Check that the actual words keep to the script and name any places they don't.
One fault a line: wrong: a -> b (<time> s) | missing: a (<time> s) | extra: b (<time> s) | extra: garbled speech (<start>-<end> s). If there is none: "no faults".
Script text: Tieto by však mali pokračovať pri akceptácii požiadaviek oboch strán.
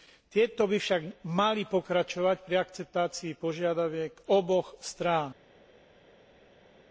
no faults